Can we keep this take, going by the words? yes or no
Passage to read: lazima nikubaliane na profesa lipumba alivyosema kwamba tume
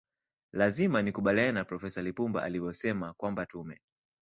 yes